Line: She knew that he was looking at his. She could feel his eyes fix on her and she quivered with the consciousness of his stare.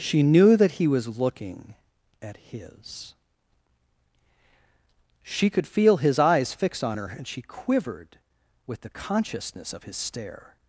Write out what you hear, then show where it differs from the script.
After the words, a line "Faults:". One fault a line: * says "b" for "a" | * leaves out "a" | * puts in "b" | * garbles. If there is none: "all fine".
She knew that he was looking at his. She could feel his eyes fix on her and she quivered with the consciousness of his stare.
Faults:
all fine